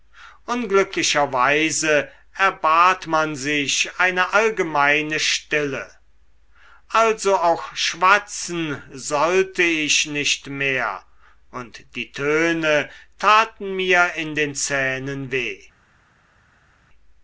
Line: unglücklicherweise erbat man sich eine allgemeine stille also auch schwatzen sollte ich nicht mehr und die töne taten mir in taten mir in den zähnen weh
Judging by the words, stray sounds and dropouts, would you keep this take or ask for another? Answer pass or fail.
fail